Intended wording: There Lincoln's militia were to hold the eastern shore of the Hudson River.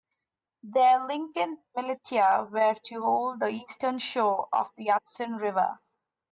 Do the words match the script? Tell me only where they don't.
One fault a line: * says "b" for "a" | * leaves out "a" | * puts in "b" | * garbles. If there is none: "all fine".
all fine